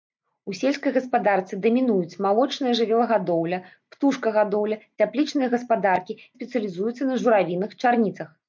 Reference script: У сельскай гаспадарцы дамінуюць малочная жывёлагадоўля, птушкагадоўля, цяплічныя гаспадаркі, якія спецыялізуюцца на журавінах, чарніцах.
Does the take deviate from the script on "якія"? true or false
true